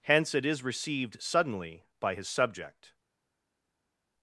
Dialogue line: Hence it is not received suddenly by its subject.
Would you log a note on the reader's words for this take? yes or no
yes